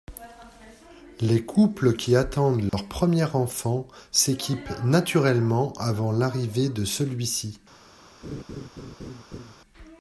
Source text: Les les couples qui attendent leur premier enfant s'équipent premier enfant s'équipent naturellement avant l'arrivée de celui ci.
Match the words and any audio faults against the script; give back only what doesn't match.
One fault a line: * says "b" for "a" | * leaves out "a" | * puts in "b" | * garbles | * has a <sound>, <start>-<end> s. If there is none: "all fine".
* leaves out "les"
* has a dropout, 2.7-2.7 s
* leaves out "premier enfant s'équipent"
* has a laugh, 8.2-9.5 s